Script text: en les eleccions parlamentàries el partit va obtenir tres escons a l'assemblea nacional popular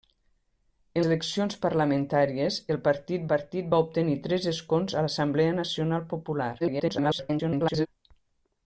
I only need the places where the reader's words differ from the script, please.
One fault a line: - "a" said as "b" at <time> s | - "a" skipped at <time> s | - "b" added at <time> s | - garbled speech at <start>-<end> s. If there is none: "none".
- "les" skipped at 1.0 s
- "partit" added at 3.3 s
- garbled speech at 6.6-7.9 s